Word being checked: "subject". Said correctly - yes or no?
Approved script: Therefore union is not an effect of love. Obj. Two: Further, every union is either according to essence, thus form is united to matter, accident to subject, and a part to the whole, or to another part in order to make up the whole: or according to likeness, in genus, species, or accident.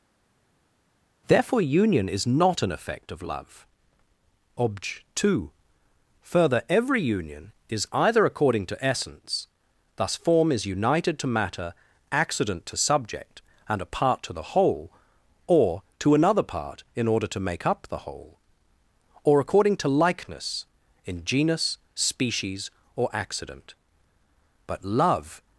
yes